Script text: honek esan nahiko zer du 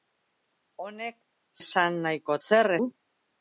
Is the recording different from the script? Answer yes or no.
no